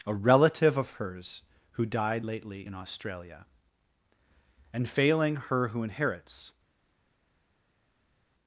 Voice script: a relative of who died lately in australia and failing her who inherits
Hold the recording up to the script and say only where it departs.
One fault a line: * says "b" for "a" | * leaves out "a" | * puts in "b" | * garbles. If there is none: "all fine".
* puts in "hers"